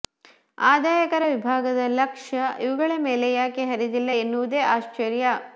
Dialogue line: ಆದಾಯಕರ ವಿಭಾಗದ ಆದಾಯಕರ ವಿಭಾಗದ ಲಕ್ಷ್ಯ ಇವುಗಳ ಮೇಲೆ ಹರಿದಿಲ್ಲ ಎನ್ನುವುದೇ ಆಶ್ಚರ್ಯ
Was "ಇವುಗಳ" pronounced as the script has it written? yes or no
yes